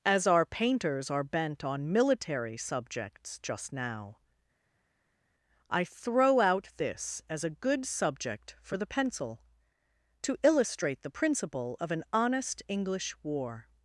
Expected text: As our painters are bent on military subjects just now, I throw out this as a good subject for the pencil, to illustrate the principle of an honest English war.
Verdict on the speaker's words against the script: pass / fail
pass